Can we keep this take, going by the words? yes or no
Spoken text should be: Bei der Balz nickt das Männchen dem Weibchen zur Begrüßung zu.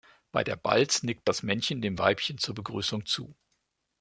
yes